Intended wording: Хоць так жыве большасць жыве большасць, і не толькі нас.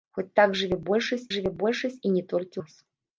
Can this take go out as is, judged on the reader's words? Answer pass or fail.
pass